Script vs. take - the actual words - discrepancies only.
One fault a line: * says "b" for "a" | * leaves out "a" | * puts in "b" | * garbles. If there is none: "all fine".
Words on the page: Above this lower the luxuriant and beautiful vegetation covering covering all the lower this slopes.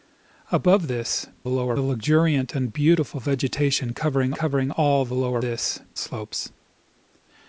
all fine